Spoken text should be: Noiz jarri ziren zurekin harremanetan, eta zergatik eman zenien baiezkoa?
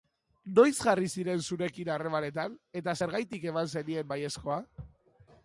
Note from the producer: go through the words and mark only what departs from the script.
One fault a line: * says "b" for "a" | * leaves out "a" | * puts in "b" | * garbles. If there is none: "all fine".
all fine